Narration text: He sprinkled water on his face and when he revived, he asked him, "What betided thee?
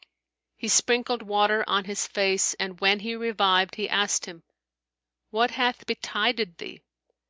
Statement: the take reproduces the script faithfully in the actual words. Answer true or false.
false